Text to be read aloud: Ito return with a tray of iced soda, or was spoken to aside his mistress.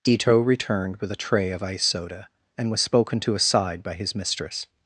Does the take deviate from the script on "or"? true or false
true